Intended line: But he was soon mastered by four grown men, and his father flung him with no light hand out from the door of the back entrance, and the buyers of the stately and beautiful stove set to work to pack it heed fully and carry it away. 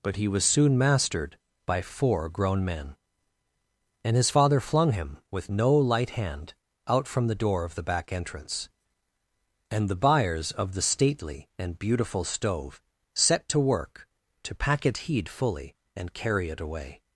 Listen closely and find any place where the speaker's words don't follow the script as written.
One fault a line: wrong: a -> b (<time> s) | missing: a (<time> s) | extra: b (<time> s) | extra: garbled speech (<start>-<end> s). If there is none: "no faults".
no faults